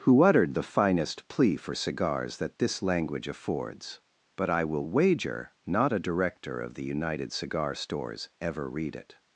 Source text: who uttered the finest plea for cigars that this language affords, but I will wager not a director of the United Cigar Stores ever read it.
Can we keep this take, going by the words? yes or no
yes